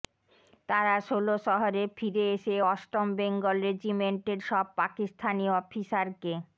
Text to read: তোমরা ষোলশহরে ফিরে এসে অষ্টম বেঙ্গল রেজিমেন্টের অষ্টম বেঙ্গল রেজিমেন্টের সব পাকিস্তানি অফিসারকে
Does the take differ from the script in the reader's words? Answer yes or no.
yes